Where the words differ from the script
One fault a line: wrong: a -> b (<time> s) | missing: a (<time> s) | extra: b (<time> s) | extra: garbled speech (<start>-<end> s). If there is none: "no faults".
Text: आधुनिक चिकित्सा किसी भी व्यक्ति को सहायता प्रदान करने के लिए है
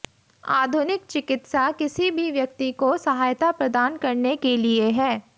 no faults